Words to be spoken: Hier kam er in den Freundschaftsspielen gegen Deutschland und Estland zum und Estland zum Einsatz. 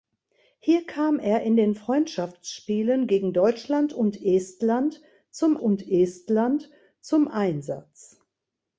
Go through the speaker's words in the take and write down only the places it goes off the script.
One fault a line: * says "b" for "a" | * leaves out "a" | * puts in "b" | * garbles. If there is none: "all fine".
all fine